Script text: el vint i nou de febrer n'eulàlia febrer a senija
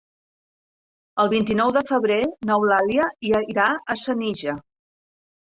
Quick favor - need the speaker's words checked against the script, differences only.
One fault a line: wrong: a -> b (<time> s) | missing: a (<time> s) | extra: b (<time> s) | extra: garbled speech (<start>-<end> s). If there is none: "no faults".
wrong: febrer -> irà (3.3 s)